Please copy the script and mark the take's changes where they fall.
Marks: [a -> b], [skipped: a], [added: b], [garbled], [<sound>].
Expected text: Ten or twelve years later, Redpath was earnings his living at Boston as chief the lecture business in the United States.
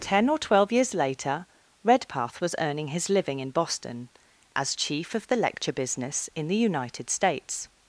Ten or twelve years later, Redpath was [earnings -> earning] his living [at -> in] Boston as chief [added: of] the lecture business in the United States.